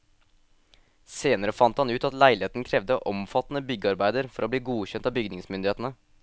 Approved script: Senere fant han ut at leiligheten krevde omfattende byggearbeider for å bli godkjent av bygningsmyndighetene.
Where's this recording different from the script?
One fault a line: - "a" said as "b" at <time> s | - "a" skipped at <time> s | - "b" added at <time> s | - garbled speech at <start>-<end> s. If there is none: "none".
none